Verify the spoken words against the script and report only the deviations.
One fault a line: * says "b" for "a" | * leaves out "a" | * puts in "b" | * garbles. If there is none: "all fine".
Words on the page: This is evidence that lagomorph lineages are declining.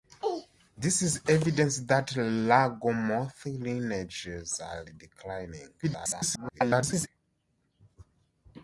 * garbles